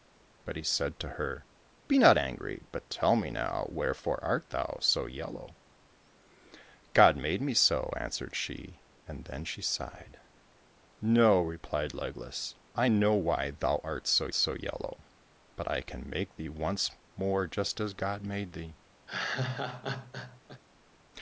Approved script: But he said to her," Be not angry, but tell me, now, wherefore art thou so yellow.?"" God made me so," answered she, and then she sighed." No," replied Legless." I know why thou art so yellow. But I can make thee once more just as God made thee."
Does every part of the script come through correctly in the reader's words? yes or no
no